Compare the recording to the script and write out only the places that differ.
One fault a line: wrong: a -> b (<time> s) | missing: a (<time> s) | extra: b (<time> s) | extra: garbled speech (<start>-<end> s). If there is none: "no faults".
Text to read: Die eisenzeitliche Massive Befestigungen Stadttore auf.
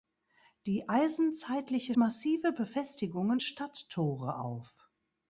no faults